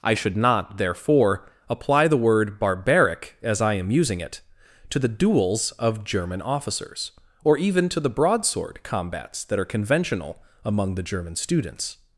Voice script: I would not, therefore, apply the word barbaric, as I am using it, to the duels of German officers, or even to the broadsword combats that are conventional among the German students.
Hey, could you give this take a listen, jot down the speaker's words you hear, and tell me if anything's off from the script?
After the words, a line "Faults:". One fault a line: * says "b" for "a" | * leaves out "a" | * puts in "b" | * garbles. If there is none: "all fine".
I should not, therefore, apply the word barbaric, as I am using it, to the duels of German officers, or even to the broadsword combats that are conventional among the German students.
Faults:
* says "should" for "would"